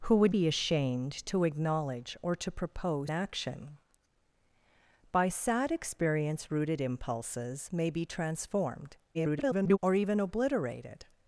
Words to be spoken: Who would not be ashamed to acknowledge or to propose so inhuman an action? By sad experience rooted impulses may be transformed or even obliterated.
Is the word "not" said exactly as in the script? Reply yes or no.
no